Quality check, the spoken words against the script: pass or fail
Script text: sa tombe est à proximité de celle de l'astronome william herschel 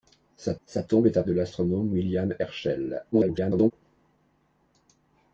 fail